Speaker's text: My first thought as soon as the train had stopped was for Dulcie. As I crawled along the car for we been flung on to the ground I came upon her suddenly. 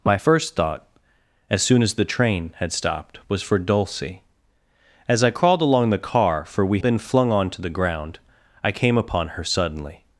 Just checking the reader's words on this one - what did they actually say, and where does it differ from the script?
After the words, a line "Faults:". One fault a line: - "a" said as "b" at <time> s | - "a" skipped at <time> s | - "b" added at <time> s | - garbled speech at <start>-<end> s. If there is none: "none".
My first thought as soon as the train had stopped was for Dulcie. As I crawled along the car for we been flung on to the ground I came upon her suddenly.
Faults:
none